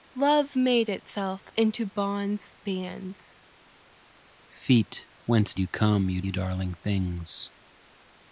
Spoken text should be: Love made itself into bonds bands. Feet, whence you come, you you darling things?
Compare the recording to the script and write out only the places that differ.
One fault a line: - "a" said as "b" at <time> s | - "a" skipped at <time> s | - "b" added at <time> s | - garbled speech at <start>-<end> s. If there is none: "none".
none